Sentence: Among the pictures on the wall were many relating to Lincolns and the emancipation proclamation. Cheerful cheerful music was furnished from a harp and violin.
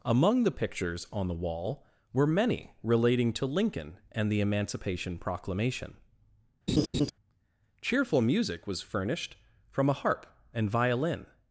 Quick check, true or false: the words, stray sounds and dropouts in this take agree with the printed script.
false